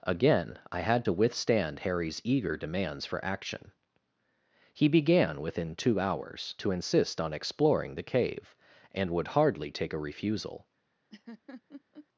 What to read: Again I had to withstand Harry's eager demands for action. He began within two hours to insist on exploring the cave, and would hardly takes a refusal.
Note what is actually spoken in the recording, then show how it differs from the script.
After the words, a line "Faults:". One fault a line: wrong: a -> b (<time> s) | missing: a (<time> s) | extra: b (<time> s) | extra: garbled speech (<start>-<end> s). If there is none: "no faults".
Again I had to withstand Harry's eager demands for action. He began within two hours to insist on exploring the cave, and would hardly take a refusal.
Faults:
wrong: takes -> take (9.7 s)